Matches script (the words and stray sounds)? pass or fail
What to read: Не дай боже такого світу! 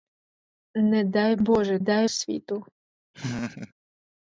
fail